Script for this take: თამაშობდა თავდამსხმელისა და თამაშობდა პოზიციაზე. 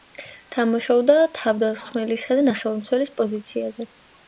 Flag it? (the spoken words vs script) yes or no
yes